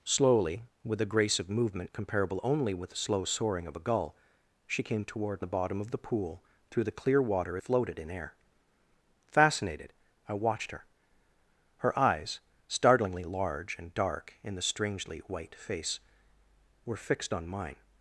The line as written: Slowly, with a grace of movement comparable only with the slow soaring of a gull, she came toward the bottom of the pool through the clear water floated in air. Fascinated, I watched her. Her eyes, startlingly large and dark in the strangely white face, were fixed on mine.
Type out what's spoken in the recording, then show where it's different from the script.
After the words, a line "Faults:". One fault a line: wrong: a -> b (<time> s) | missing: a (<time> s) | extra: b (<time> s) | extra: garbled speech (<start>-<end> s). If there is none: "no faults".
Slowly, with a grace of movement comparable only with the slow soaring of a gull, she came toward the bottom of the pool through the clear water floated in air. Fascinated, I watched her. Her eyes, startlingly large and dark in the strangely white face, were fixed on mine.
Faults:
no faults